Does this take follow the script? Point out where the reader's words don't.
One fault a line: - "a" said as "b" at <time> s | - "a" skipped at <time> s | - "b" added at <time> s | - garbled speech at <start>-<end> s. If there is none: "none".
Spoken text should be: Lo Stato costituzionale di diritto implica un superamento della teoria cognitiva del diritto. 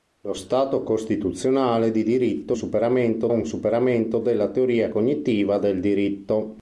- "implica" said as "superamento" at 2.5 s